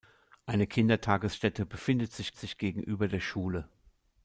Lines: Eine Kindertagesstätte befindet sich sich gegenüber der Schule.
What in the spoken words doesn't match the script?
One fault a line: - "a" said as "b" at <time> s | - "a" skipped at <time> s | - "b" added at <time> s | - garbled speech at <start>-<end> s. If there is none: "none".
none